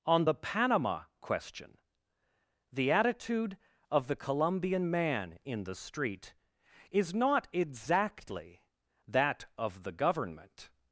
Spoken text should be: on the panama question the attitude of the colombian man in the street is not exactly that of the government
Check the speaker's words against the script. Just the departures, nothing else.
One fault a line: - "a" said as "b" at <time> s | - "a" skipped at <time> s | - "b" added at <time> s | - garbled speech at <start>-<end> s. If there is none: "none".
none